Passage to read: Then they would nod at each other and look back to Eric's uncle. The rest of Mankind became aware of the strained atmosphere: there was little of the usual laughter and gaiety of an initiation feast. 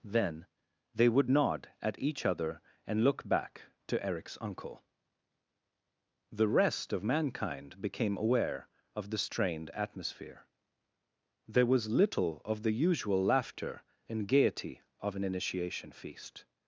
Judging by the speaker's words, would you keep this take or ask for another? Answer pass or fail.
pass